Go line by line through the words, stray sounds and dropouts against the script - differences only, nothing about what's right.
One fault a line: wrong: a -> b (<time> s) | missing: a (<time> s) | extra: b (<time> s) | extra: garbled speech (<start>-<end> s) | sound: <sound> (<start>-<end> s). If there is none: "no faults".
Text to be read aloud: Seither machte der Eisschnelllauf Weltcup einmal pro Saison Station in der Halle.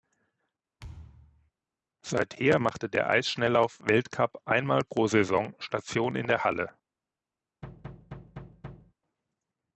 sound: thud (0.8-1.5 s)
sound: thud (7.6-8.9 s)